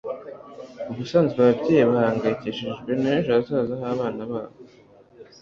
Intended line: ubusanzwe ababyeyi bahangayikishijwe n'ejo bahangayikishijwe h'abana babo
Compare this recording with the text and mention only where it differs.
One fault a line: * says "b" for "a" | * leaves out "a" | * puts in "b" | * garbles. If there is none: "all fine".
* says "hazaza" for "bahangayikishijwe"